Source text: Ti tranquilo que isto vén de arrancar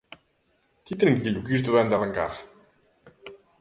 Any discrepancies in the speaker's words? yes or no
no